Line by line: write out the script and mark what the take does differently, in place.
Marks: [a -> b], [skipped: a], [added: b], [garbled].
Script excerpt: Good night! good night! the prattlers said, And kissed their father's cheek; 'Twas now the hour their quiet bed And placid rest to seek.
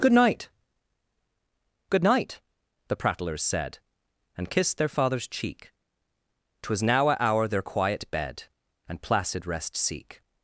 Good night! good night! the prattlers said, And kissed their father's cheek; 'Twas now [the -> a] hour their quiet bed And placid rest [skipped: to] seek.